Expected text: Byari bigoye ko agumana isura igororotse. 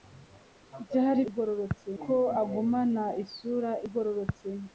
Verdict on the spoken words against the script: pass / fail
fail